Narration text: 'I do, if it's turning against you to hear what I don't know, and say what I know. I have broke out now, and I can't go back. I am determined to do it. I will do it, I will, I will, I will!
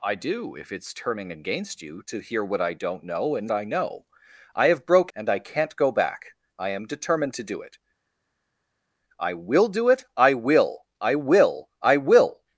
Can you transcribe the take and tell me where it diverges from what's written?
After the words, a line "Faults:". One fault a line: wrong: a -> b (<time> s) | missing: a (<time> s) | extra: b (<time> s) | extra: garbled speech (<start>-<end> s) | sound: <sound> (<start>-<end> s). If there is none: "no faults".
'I do, if it's turning against you to hear what I don't know, and I know. I have broke and I can't go back. I am determined to do it. I will do it, I will, I will, I will!
Faults:
missing: say what (3.5 s)
missing: out now (5.1 s)